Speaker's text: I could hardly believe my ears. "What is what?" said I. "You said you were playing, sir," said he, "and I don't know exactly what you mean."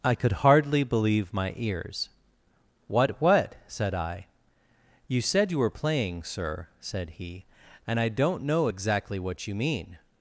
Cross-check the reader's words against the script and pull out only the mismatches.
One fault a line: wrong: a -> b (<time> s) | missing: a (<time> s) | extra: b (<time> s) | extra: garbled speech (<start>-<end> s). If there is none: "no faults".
missing: is (3.2 s)